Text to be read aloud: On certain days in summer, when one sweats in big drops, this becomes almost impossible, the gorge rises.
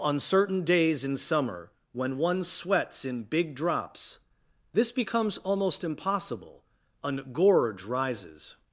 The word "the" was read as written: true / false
false